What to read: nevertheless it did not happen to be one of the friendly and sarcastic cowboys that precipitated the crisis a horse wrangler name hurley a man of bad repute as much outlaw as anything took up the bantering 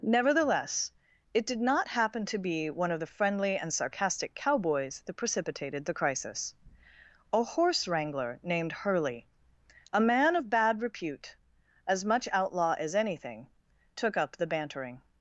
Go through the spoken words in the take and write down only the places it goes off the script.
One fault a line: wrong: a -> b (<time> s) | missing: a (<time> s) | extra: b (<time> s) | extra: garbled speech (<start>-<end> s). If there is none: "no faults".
wrong: name -> named (8.4 s)